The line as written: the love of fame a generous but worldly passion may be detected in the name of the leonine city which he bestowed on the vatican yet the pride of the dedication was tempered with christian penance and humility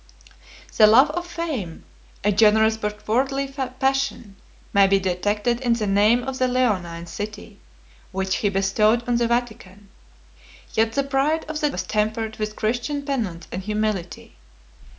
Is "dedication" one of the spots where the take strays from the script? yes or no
yes